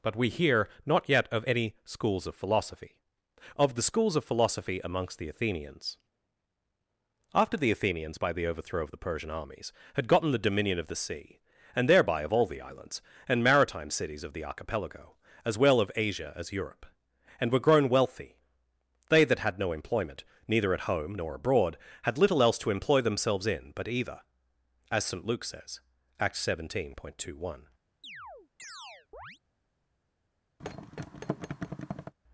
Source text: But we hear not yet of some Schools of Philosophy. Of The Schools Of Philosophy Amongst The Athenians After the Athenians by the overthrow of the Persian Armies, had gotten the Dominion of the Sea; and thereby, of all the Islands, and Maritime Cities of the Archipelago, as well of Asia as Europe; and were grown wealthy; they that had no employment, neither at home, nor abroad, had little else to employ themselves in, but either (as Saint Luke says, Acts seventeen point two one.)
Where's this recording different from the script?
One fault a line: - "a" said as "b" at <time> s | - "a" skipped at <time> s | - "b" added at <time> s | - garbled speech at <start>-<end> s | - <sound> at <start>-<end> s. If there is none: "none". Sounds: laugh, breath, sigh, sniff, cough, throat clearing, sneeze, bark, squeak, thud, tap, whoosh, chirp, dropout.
- "some" said as "any" at 1.4 s
- chirp at 28.0-29.4 s
- thud at 30.6-32.1 s